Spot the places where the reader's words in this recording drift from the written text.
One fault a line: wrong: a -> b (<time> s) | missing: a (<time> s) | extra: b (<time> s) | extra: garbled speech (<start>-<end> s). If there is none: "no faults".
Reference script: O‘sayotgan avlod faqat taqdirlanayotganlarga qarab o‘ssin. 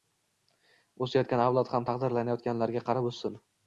wrong: faqat -> ham (1.8 s)